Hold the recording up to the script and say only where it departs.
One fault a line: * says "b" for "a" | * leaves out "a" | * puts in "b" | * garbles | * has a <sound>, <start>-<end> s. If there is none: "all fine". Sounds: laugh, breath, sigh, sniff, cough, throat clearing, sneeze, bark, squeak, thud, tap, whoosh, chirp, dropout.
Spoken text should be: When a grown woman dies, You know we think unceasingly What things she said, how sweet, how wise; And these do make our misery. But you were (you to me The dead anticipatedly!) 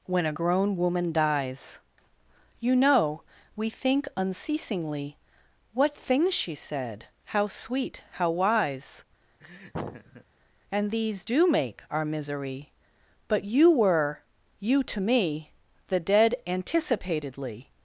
* has a laugh, 9.4-10.2 s